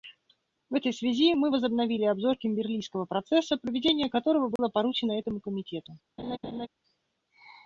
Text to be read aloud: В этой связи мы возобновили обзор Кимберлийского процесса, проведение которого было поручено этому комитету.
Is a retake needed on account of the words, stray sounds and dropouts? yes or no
yes